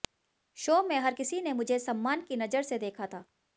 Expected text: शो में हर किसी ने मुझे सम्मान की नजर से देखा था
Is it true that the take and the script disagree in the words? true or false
false